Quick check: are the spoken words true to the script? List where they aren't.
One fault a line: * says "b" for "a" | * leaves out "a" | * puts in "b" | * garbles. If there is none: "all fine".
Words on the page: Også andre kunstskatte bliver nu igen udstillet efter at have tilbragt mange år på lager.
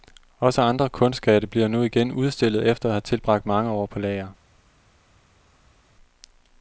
all fine